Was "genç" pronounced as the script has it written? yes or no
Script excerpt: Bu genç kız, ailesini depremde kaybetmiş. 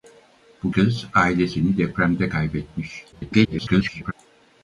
no